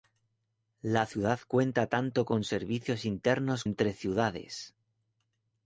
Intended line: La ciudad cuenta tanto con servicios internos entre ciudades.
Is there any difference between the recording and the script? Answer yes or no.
no